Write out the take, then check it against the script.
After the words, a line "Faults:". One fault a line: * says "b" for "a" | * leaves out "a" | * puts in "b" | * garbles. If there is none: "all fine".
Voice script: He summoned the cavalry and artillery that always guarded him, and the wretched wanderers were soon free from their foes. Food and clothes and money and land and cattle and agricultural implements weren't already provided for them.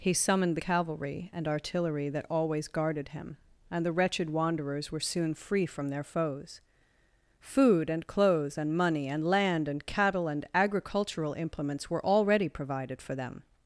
He summoned the cavalry and artillery that always guarded him, and the wretched wanderers were soon free from their foes. Food and clothes and money and land and cattle and agricultural implements were already provided for them.
Faults:
* says "were" for "weren't"